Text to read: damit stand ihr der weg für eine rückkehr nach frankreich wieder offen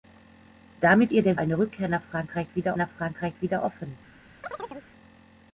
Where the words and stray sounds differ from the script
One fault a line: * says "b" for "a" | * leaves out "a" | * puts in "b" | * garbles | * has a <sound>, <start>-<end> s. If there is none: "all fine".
* leaves out "stand"
* says "eine rückkehr nach frankreich wieder" for "weg für eine rückkehr"
* has a chirp, 4.4-4.9 s